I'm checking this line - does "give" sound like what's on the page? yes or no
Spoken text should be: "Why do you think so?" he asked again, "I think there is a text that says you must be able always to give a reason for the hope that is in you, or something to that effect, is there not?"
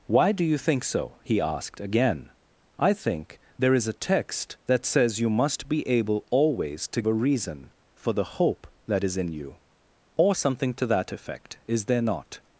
no